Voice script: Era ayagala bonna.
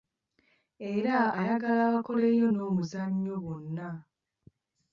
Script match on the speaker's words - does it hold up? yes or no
no